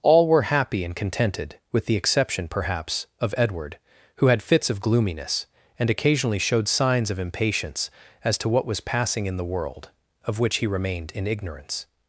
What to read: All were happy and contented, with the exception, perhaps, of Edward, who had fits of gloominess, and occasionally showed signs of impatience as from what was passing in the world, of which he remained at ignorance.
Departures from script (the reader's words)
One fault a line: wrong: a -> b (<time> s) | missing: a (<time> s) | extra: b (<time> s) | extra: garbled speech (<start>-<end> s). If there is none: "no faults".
wrong: from -> to (8.4 s)
wrong: at -> in (11.1 s)